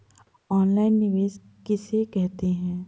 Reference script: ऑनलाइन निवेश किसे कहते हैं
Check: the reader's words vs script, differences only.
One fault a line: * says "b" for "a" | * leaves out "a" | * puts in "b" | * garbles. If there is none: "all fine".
all fine